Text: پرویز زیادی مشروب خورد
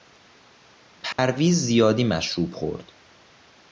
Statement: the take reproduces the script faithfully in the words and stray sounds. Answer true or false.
false